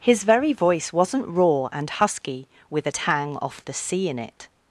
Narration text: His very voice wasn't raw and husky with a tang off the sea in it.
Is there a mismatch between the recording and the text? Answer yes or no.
no